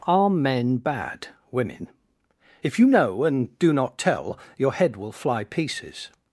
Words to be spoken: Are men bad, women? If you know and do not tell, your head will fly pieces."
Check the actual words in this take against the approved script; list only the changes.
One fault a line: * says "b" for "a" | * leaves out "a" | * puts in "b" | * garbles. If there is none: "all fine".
all fine